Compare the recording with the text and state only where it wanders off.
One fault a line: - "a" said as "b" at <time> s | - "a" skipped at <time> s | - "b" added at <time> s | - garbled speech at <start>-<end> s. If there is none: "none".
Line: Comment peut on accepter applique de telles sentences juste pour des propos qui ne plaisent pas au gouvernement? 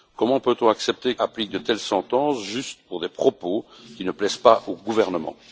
none